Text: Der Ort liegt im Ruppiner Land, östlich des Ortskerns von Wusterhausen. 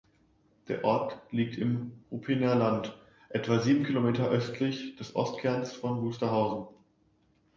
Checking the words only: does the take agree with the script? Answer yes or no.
no